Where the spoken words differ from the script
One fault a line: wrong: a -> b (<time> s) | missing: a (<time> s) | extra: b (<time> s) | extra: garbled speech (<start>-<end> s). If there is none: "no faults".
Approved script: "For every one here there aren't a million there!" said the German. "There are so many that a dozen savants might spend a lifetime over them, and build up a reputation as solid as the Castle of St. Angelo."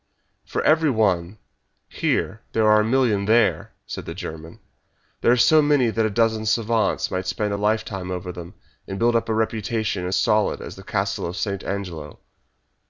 wrong: aren't -> are (2.7 s)